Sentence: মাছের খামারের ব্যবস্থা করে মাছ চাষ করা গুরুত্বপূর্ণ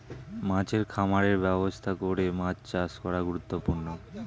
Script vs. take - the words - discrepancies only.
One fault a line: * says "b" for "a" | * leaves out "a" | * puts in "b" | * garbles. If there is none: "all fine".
all fine